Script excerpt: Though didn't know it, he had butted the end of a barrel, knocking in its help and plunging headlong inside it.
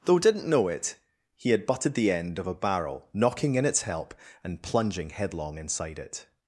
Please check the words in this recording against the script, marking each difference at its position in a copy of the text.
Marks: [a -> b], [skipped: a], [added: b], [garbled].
Though didn't know it, he had butted the end of a barrel, knocking in its help and plunging headlong inside it.